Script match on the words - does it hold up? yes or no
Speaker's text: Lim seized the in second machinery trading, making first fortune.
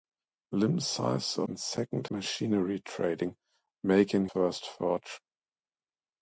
yes